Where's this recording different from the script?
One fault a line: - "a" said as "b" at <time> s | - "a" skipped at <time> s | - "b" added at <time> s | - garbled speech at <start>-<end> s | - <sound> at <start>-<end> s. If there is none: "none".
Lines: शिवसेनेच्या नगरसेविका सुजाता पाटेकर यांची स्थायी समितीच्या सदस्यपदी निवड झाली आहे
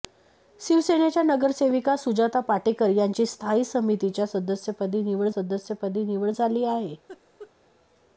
- "सदस्यपदी निवड" added at 5.3 s
- laugh at 7.1-7.5 s